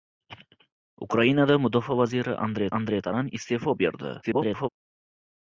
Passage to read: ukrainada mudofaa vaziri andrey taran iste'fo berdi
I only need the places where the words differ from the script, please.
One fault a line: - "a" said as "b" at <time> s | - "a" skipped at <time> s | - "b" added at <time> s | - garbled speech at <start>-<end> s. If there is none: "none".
- "andrey" added at 2.8 s
- garbled speech at 4.2-4.7 s